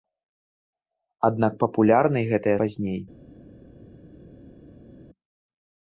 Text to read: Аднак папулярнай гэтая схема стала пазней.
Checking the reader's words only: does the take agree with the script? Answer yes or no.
no